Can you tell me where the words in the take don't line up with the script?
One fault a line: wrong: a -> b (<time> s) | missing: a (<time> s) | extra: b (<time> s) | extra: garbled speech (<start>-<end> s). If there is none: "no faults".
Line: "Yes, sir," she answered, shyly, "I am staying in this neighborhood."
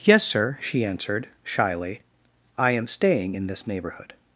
no faults